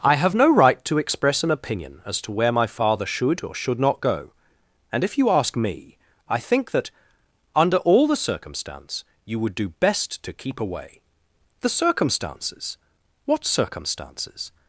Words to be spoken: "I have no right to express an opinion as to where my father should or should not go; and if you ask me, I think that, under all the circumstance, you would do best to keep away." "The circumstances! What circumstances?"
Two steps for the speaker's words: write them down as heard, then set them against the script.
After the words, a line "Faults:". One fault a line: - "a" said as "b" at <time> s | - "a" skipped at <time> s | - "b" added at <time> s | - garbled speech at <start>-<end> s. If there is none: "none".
"I have no right to express an opinion as to where my father should or should not go; and if you ask me, I think that, under all the circumstance, you would do best to keep away." "The circumstances! What circumstances?"
Faults:
none